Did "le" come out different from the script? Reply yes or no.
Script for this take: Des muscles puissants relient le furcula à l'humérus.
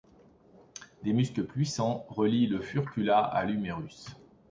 no